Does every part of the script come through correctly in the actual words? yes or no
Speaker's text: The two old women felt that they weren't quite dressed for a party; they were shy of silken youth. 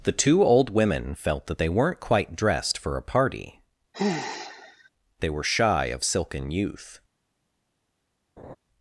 yes